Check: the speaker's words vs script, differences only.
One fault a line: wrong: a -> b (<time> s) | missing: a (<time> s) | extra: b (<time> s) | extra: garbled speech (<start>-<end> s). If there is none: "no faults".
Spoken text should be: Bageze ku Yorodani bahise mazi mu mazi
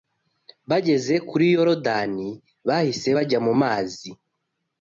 wrong: ku -> kuri (1.3 s)
wrong: mazi -> bajya (3.2 s)